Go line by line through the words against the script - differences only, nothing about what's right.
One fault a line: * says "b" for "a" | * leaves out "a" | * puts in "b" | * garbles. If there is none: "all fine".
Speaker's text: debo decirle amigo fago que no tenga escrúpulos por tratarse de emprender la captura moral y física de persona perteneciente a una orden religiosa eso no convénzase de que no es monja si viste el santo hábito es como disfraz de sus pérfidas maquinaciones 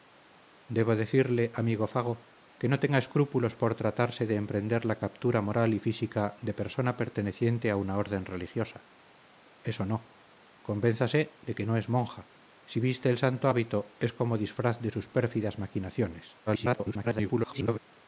* garbles